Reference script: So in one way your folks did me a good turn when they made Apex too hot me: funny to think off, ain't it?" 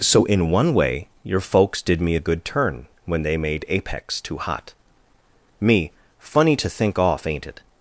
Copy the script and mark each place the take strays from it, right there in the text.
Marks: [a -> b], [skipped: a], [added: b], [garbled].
So in one way your folks did me a good turn when they made Apex too hot me: funny to think off, ain't it?"